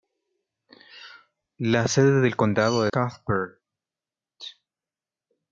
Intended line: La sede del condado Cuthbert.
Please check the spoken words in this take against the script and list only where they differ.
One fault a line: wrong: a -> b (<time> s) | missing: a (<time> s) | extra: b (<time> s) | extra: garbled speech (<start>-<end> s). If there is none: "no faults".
no faults